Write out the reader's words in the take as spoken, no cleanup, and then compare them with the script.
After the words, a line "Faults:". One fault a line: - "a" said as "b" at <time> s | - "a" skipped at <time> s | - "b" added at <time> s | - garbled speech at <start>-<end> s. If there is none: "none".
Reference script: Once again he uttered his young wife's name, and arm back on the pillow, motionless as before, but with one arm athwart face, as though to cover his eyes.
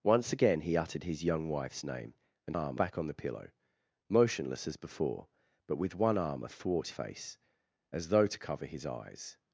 Once again he uttered his young wife's name, and arm back on the pillow, motionless as before, but with one arm athwart face, as though to cover his eyes.
Faults:
none